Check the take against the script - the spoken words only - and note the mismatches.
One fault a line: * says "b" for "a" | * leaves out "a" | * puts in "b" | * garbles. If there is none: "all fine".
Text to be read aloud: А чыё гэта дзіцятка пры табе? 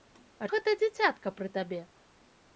* leaves out "чыё"